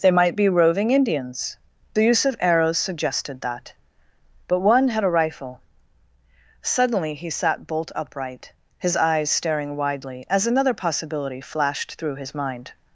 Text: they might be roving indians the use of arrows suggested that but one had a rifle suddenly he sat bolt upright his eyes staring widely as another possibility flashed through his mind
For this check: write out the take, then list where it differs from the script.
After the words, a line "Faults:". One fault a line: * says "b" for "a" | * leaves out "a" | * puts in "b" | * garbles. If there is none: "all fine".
they might be roving indians the use of arrows suggested that but one had a rifle suddenly he sat bolt upright his eyes staring widely as another possibility flashed through his mind
Faults:
all fine